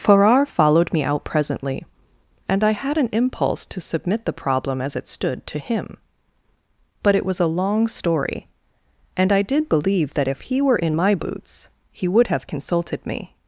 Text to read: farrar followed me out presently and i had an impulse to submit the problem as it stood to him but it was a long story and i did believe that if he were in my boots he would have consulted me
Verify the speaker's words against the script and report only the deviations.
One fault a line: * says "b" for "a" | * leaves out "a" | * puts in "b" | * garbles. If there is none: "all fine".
all fine